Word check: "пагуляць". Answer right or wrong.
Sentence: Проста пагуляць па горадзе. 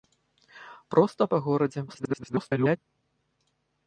wrong